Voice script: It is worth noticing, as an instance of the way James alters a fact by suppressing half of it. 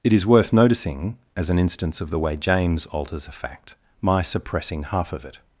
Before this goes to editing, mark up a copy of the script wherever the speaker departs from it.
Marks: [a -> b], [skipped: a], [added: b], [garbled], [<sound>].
It is worth noticing, as an instance of the way James alters a fact [by -> my] suppressing half of it.